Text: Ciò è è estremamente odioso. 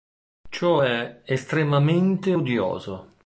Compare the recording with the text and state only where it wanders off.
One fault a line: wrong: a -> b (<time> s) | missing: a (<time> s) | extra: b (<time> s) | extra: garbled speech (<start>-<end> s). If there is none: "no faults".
missing: è (1.2 s)